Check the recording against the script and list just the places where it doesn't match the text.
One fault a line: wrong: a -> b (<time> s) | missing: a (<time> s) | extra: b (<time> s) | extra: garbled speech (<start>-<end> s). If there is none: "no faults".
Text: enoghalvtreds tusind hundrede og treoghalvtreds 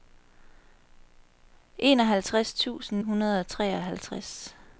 no faults